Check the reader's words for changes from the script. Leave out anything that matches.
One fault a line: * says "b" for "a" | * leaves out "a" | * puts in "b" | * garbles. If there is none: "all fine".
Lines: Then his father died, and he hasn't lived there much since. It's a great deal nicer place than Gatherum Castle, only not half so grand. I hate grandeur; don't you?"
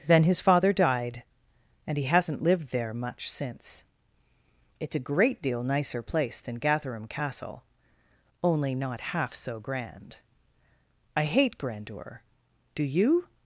* says "do" for "don't"